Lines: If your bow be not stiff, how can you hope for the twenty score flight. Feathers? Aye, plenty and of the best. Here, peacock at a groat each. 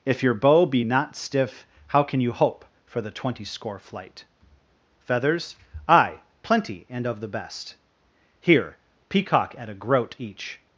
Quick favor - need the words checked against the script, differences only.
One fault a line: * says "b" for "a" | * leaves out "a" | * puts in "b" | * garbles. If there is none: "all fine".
all fine